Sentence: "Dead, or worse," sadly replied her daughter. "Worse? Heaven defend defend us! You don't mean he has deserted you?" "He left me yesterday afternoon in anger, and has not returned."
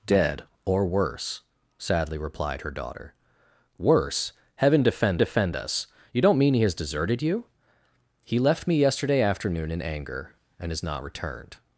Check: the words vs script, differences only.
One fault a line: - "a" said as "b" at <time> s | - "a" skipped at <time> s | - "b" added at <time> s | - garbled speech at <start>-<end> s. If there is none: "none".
none